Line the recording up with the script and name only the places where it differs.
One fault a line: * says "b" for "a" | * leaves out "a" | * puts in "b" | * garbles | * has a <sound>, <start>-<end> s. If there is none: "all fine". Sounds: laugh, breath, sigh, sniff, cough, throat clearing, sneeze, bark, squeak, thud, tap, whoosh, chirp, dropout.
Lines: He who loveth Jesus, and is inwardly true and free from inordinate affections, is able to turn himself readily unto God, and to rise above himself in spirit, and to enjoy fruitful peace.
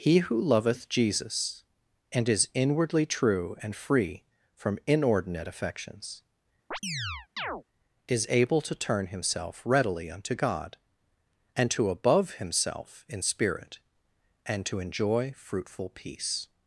* has a chirp, 6.7-7.6 s
* leaves out "rise"